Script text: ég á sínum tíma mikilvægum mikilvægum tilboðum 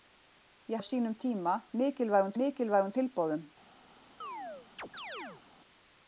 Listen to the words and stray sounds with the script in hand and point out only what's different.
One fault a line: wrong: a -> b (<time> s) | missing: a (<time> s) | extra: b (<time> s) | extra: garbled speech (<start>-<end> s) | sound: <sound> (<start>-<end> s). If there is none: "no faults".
sound: chirp (4.2-5.4 s)